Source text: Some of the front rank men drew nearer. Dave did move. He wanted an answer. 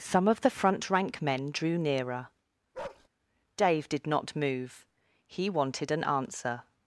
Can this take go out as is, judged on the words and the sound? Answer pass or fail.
fail